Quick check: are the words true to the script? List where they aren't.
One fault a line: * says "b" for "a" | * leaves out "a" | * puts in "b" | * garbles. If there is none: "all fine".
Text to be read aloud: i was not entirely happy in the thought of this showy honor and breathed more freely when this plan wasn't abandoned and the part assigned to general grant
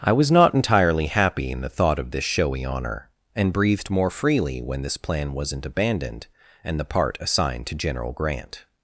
all fine